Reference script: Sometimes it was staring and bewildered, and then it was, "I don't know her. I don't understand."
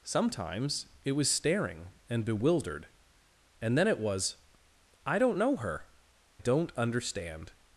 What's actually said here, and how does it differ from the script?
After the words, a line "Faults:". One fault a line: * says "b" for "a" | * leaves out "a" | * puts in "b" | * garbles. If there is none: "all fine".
Sometimes it was staring and bewildered, and then it was, "I don't know her. don't understand."
Faults:
* leaves out "I"